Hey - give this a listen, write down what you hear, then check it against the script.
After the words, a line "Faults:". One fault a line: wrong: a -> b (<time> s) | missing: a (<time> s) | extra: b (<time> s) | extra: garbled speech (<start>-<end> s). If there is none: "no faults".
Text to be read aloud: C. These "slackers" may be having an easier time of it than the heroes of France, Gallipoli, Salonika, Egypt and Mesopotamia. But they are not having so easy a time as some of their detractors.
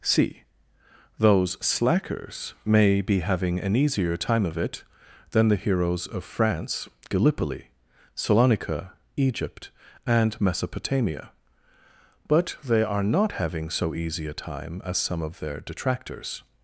C. Those "slackers" may be having an easier time of it than the heroes of France, Gallipoli, Salonika, Egypt and Mesopotamia. But they are not having so easy a time as some of their detractors.
Faults:
wrong: These -> Those (1.2 s)